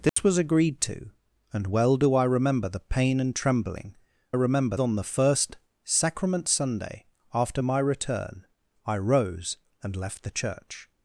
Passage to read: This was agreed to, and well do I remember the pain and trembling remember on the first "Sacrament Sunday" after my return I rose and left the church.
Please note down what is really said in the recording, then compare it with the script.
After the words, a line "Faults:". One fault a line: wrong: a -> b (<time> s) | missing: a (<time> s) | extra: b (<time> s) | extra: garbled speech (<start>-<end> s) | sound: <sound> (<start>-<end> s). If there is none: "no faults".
This was agreed to, and well do I remember the pain and trembling remember on the first "Sacrament Sunday" after my return I rose and left the church.
Faults:
sound: dropout (0.1-0.2 s)